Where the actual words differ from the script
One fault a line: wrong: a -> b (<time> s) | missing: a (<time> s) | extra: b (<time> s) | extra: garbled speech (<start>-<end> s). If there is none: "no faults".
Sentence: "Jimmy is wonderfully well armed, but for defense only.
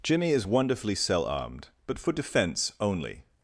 wrong: well -> cell (1.0 s)